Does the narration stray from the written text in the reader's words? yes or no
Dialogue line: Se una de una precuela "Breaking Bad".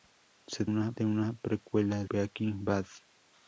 no